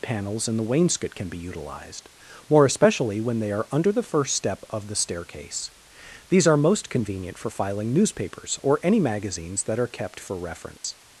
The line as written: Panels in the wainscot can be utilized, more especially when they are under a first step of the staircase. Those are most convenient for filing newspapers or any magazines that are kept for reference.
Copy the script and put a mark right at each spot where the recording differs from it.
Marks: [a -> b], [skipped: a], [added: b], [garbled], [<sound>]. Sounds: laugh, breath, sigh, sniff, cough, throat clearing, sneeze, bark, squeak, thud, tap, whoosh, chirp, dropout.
Panels in the wainscot can be utilized, more especially when they are under [a -> the] first step of the staircase. [Those -> These] are most convenient for filing newspapers or any magazines that are kept for reference. [dropout]